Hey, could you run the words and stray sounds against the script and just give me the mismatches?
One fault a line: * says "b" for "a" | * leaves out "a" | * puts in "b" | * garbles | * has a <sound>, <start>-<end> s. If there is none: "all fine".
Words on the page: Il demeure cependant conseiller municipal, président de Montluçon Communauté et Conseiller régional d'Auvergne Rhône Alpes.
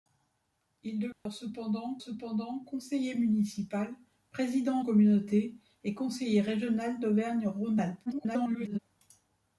* has a dropout, 1.1-1.3 s
* puts in "cependant"
* leaves out "de Montluçon"
* garbles